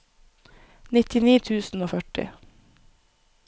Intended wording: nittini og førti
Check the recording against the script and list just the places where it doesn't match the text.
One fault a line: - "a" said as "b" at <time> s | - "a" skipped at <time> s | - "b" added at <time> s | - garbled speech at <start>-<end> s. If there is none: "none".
- "tusen" added at 1.5 s